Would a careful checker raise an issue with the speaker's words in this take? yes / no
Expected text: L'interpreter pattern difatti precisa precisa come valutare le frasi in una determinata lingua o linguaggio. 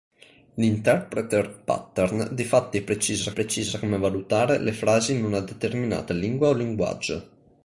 no